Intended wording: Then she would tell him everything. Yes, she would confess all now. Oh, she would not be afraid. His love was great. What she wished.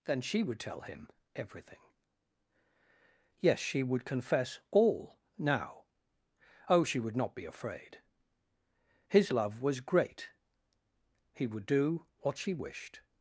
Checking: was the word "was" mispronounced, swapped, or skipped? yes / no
no